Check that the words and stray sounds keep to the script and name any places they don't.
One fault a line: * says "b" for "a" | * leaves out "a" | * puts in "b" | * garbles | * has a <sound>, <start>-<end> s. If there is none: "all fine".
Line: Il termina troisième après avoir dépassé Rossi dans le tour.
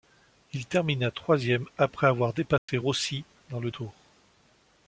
* has a dropout, 2.6-2.7 s